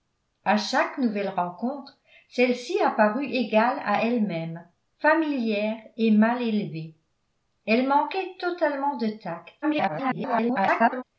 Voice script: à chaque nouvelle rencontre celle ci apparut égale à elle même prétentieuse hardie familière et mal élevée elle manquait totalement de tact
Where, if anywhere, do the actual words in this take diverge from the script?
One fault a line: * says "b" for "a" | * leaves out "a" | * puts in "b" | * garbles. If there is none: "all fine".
* leaves out "prétentieuse hardie"
* garbles